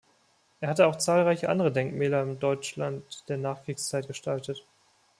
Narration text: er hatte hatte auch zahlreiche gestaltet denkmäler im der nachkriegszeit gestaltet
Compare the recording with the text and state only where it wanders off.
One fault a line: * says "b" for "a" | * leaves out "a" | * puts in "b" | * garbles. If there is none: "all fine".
* leaves out "hatte"
* says "andere" for "gestaltet"
* puts in "deutschland"